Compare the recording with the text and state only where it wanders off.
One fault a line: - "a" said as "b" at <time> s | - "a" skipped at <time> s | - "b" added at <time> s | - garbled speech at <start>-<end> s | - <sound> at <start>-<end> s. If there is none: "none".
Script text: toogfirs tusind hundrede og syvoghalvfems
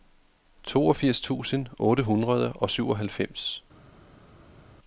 - "otte" added at 1.8 s